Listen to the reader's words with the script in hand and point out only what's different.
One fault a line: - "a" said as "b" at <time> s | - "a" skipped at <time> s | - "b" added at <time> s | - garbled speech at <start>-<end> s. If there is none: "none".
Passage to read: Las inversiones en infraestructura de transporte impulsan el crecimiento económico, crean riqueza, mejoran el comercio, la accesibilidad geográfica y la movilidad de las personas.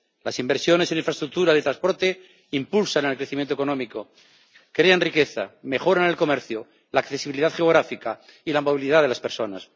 none